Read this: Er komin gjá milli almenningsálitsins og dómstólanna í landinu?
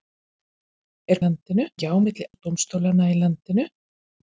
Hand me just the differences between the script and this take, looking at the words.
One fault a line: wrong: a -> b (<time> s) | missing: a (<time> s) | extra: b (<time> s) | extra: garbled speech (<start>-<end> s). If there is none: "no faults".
wrong: komin -> landinu (1.3 s)
missing: almenningsálitsins (2.3 s)